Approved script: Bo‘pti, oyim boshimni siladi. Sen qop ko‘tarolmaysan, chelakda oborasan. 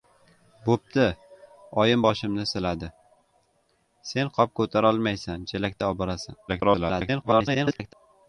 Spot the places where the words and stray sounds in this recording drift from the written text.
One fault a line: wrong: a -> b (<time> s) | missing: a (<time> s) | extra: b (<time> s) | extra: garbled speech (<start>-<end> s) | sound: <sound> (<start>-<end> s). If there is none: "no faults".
extra: garbled speech (6.5-7.9 s)